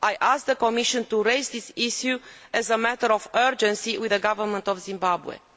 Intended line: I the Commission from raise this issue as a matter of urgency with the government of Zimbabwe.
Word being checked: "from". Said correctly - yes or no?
no